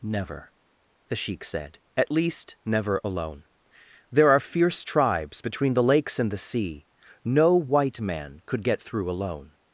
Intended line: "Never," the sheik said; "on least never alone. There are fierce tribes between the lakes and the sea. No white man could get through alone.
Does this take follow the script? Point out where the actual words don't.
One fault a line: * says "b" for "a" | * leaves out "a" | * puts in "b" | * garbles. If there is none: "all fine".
* says "at" for "on"